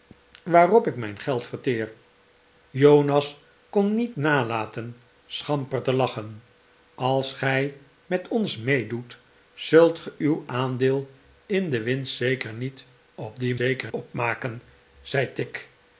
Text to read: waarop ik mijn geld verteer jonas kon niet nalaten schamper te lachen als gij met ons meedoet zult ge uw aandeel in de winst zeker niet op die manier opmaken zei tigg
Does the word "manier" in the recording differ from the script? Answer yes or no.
yes